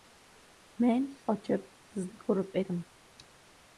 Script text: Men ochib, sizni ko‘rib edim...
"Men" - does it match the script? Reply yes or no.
yes